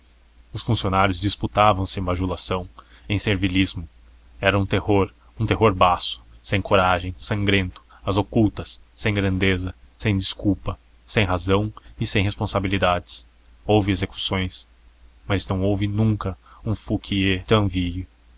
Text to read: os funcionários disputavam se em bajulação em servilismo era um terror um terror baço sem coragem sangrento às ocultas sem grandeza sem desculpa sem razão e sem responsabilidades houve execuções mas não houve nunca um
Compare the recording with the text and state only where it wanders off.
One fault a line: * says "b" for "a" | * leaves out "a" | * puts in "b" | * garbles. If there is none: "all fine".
all fine